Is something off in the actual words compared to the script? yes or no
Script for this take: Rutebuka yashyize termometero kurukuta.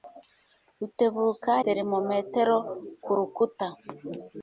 yes